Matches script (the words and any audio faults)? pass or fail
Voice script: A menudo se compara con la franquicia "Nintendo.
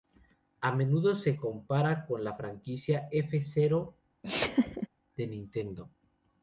fail